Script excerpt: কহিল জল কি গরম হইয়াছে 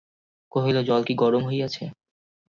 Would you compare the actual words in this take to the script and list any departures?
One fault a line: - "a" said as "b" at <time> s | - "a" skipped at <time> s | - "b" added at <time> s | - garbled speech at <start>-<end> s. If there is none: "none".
none